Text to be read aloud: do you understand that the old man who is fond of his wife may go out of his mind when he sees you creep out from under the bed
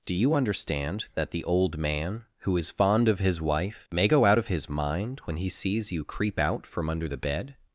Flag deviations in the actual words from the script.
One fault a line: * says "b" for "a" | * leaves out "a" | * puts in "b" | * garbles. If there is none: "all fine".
all fine